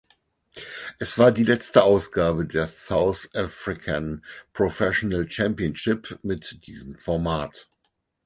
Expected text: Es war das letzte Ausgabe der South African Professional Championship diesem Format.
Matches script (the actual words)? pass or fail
fail